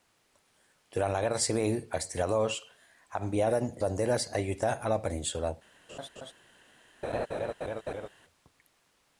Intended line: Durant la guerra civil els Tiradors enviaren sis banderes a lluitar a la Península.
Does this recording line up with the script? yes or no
no